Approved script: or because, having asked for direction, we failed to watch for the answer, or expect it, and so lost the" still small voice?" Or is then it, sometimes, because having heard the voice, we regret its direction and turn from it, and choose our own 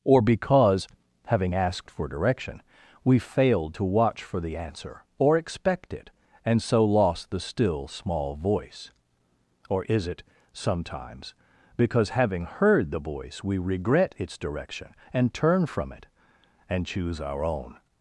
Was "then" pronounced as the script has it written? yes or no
no